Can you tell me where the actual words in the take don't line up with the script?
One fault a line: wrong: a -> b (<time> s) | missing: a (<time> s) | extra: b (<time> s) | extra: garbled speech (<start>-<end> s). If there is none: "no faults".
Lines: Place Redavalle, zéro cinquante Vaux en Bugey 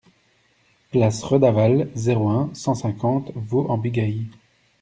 extra: un cent (2.3 s)